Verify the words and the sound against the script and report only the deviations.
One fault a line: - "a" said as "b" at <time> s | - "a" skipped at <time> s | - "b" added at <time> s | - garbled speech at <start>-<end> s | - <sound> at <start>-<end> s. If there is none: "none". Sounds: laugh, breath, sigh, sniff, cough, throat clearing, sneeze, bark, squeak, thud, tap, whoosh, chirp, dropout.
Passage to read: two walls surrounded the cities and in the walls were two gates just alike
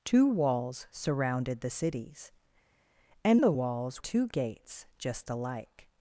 - "in" skipped at 3.4 s
- "were" skipped at 4.0 s